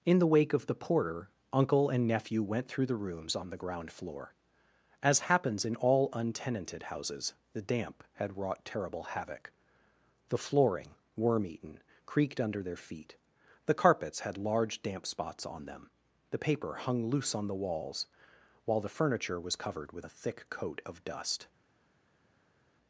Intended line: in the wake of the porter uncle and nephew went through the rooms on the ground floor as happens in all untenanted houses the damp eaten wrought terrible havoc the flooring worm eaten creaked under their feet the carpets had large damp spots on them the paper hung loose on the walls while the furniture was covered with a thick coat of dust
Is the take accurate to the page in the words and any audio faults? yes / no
no